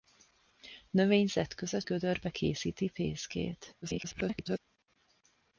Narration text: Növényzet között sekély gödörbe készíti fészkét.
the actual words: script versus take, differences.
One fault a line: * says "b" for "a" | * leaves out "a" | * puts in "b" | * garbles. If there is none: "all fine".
* leaves out "sekély"
* garbles